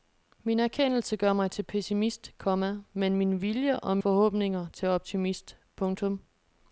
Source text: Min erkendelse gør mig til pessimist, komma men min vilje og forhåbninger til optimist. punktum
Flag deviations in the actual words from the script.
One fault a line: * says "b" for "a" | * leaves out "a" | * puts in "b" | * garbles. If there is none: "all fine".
all fine